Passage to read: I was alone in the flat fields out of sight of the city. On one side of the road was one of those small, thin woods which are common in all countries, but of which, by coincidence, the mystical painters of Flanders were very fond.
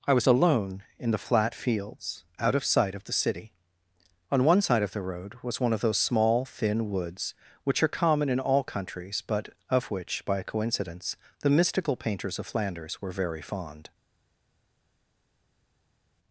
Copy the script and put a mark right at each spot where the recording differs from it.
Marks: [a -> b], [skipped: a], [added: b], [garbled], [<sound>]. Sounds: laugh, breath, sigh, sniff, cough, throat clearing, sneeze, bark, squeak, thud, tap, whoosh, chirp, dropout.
I was alone in the flat fields out of sight of the city. On one side of the road was one of those small, thin woods which are common in all countries, but of which, by coincidence, the mystical painters of Flanders were very fond.